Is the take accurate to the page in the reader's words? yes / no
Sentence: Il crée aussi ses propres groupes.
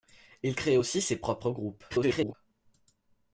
no